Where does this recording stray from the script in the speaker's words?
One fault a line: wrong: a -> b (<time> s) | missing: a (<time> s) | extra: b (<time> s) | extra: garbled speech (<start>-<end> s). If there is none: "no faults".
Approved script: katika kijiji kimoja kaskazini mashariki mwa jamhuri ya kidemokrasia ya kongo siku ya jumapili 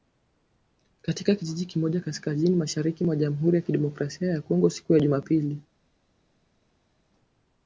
no faults